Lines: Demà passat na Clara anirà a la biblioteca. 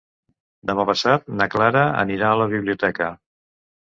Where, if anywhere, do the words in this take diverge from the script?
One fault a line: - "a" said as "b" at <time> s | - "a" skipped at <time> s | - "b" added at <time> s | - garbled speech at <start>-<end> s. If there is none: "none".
none